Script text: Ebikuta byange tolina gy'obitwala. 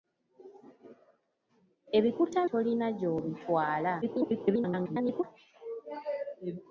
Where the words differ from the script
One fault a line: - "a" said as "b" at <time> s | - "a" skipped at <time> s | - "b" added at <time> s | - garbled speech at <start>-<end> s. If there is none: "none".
- "byange" skipped at 2.4 s
- garbled speech at 4.0-5.2 s